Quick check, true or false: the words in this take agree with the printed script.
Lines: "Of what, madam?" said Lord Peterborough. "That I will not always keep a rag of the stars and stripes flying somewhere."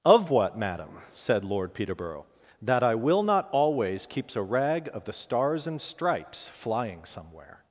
false